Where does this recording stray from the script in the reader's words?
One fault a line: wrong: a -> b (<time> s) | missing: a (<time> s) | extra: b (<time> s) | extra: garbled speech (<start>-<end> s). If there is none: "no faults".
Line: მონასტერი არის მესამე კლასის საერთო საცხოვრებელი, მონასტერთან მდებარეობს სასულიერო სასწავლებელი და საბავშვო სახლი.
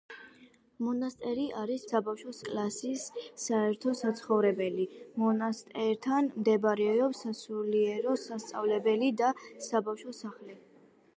wrong: მესამე -> საბავშვო (1.9 s)